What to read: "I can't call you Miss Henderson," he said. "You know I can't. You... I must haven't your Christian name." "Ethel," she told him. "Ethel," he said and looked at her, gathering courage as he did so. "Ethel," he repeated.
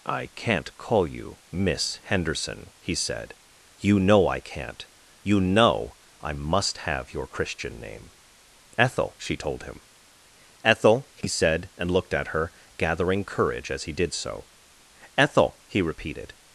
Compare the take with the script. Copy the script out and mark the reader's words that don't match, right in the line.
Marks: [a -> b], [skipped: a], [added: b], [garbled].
"I can't call you Miss Henderson," he said. "You know I can't. You... [added: know] I must [haven't -> have] your Christian name." "Ethel," she told him. "Ethel," he said and looked at her, gathering courage as he did so. "Ethel," he repeated.